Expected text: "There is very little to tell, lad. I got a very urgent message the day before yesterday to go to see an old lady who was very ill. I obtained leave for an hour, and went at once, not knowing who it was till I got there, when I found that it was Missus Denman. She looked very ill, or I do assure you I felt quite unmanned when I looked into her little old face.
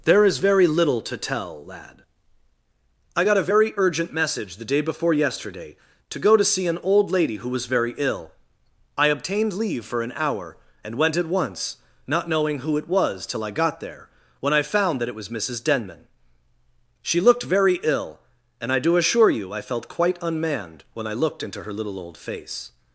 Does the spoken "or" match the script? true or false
false